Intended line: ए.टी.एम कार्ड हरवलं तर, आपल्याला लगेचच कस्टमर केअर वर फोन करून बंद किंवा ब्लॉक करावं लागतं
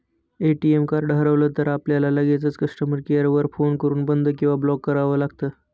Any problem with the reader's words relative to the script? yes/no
no